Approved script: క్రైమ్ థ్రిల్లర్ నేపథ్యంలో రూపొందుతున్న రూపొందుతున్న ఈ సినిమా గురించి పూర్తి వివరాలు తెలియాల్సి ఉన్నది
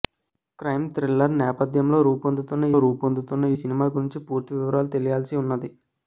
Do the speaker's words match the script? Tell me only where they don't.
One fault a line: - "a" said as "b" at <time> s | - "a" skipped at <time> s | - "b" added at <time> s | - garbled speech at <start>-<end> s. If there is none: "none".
none